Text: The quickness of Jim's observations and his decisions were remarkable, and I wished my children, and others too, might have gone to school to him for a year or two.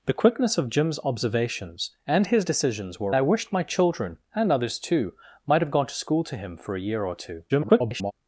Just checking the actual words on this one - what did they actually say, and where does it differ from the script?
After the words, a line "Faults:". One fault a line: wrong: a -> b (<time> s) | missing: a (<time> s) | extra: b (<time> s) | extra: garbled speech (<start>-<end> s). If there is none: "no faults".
The quickness of Jim's observations and his decisions were I wished my children, and others too, might have gone to school to him for a year or two. [garbled]
Faults:
missing: remarkable and (3.1 s)
extra: garbled speech (7.5-8.1 s)